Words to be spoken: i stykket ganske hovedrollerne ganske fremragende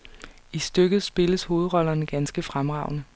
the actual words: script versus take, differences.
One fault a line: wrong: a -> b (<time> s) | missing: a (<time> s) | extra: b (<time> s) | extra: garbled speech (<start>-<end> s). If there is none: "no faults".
wrong: ganske -> spilles (1.0 s)